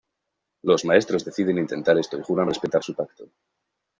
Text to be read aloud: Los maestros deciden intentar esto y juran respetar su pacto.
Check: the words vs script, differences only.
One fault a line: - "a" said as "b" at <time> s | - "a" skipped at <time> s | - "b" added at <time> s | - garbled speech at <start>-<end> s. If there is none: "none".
none